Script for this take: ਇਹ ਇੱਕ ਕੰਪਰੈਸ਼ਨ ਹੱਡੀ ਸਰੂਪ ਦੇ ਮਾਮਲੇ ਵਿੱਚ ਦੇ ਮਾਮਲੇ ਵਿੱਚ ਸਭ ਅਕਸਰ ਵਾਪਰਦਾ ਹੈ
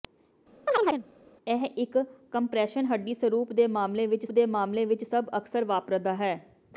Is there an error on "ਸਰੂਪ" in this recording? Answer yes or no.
no